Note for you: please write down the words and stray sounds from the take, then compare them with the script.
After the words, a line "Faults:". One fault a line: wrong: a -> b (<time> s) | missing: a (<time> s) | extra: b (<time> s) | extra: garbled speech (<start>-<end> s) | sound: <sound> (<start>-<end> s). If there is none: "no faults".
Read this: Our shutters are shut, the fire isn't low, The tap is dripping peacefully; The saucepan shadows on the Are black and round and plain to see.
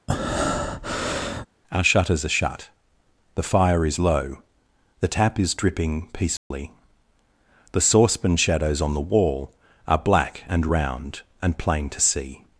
Our shutters are shut, the fire is low, The tap is dripping peacefully; The saucepan shadows on the wall Are black and round and plain to see.
Faults:
sound: breath (0.1-1.5 s)
wrong: isn't -> is (3.8 s)
sound: dropout (6.4-6.5 s)
extra: wall (9.0 s)